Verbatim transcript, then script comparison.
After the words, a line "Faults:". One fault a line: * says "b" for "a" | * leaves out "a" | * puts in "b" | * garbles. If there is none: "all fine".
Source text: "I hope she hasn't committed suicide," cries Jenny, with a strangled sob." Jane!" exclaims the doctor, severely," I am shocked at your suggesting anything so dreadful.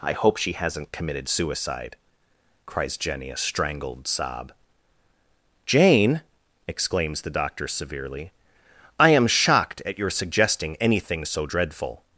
"I hope she hasn't committed suicide," cries Jenny, a strangled sob." Jane!" exclaims the doctor, severely," I am shocked at your suggesting anything so dreadful.
Faults:
* leaves out "with"